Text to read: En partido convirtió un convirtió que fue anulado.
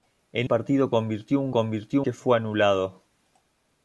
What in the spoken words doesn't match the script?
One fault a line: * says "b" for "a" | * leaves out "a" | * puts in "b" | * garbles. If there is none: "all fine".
all fine